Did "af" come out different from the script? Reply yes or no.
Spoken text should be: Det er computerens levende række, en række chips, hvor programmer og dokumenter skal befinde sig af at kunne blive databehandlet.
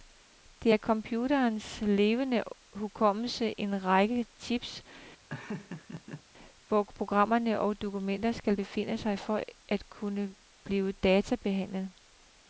yes